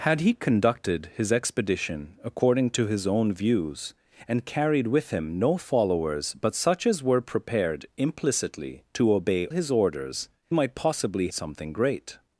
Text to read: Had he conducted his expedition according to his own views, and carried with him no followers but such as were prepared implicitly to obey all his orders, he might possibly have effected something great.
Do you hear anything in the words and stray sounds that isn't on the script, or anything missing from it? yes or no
yes